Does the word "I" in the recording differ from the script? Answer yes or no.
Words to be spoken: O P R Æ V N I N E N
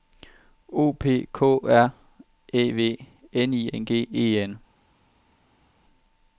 no